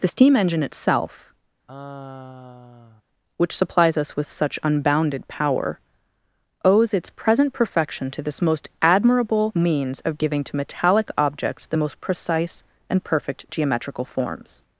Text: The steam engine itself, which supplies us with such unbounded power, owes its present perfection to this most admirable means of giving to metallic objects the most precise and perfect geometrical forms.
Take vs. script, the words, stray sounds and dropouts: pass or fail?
fail